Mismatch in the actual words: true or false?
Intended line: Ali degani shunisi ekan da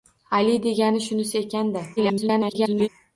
true